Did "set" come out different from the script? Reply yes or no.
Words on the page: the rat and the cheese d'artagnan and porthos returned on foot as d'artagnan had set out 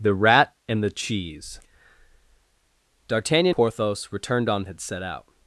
no